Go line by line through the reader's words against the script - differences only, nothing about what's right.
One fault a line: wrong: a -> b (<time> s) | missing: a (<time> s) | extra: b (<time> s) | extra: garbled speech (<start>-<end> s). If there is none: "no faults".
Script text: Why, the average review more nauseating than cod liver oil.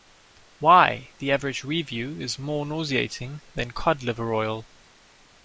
extra: is (2.2 s)